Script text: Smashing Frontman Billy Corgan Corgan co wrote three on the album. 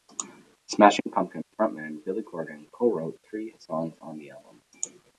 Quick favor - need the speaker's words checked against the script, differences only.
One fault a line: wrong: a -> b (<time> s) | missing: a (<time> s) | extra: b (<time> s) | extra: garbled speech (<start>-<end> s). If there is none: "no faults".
extra: Pumpkins (1.1 s)
missing: Corgan (2.6 s)
extra: songs (3.7 s)